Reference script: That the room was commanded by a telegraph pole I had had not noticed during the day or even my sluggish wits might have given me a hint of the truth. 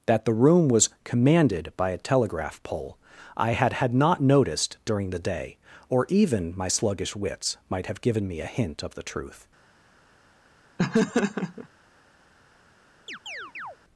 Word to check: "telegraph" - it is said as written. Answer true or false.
true